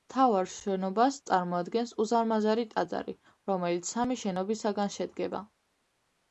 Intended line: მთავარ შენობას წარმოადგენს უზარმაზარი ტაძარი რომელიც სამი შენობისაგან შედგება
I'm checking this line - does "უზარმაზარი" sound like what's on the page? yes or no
yes